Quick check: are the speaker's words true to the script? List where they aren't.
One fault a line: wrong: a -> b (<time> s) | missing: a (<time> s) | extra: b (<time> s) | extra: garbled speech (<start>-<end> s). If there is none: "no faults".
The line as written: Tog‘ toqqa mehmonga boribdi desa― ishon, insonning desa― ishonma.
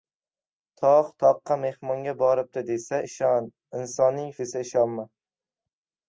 no faults